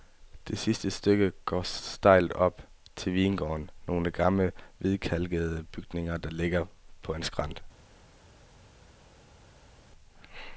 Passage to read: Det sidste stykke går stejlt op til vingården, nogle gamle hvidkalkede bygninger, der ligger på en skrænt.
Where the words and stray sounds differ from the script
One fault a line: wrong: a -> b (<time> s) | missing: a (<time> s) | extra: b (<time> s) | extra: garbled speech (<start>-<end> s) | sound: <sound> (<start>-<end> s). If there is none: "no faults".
no faults